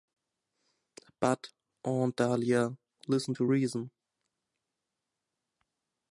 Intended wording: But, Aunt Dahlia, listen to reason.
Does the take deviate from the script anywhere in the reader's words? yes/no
no